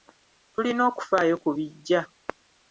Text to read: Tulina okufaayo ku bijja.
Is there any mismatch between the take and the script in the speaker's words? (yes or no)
no